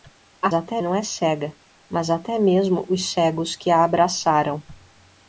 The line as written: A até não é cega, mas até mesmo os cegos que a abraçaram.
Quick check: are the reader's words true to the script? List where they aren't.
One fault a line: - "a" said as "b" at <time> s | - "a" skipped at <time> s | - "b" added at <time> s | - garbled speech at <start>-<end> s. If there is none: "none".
none